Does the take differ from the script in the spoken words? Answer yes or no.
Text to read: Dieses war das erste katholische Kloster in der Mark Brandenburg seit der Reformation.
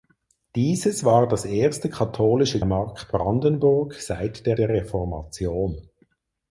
yes